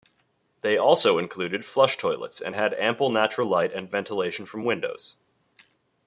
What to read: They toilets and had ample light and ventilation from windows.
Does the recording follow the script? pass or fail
fail